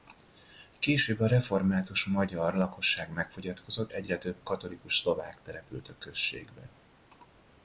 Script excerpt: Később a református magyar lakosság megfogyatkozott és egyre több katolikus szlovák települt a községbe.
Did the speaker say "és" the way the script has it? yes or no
no